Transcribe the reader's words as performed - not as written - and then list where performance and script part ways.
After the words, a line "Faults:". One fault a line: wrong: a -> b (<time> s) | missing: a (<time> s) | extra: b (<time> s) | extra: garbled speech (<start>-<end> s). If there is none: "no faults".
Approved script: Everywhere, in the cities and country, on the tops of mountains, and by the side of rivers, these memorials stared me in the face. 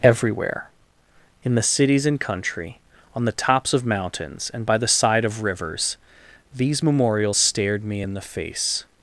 Everywhere, in the cities and country, on the tops of mountains, and by the side of rivers, these memorials stared me in the face.
Faults:
no faults